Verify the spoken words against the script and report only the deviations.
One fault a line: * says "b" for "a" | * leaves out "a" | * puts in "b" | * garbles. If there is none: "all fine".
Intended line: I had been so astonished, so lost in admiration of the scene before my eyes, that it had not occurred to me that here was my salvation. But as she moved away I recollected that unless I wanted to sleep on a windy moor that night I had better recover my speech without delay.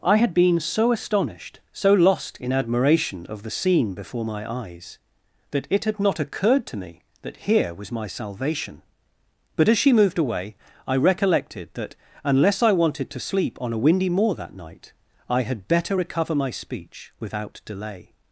all fine